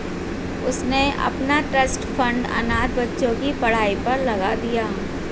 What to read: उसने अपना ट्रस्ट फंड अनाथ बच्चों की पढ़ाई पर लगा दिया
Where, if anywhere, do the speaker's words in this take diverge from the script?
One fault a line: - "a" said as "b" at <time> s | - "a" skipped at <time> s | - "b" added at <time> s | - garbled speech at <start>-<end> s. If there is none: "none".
none